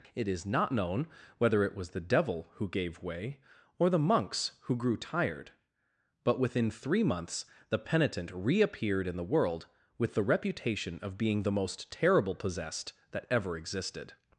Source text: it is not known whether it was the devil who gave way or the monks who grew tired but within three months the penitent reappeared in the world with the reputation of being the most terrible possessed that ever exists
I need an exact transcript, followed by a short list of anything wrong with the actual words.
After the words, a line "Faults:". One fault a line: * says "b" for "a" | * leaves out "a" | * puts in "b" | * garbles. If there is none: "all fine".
it is not known whether it was the devil who gave way or the monks who grew tired but within three months the penitent reappeared in the world with the reputation of being the most terrible possessed that ever existed
Faults:
* says "existed" for "exists"